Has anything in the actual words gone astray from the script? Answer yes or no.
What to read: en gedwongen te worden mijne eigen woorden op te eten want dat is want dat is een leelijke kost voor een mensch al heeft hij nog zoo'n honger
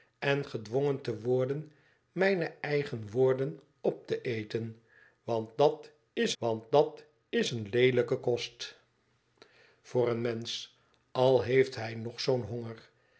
no